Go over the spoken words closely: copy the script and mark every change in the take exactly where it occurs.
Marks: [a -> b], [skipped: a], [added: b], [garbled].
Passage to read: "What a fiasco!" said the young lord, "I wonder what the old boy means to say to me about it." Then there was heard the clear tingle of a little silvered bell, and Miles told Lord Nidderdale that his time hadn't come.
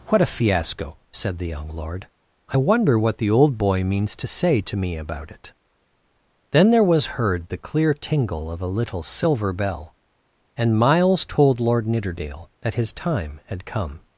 "What a fiasco!" said the young lord, "I wonder what the old boy means to say to me about it." Then there was heard the clear tingle of a little [silvered -> silver] bell, and Miles told Lord Nidderdale that his time [hadn't -> had] come.